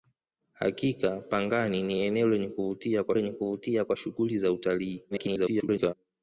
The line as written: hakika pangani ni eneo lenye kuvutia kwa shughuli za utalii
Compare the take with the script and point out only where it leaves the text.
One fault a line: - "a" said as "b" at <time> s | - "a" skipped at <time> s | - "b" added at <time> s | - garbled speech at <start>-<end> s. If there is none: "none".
- "lenye kuvutia kwa" added at 3.1 s
- garbled speech at 5.1-5.9 s